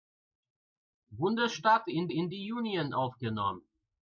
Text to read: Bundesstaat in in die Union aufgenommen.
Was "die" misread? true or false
false